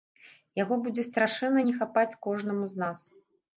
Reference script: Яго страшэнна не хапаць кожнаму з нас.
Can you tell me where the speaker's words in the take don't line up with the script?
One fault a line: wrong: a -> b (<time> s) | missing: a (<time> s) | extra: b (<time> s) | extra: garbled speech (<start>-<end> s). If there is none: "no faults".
extra: будзе (0.9 s)